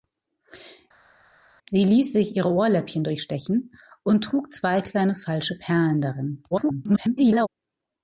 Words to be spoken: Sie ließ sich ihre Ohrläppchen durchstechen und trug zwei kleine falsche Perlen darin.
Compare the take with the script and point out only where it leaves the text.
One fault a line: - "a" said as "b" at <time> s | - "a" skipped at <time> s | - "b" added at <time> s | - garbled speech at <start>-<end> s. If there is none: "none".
- garbled speech at 6.5-7.5 s